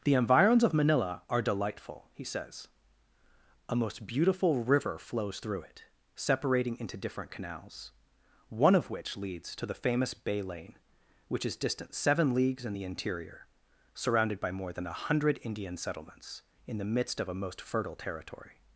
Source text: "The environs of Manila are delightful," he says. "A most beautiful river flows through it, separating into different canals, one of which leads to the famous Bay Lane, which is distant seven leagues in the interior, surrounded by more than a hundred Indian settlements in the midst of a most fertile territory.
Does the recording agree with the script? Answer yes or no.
yes